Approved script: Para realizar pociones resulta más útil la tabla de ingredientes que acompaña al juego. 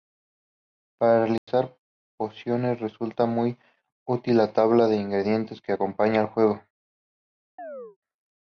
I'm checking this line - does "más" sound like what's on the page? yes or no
no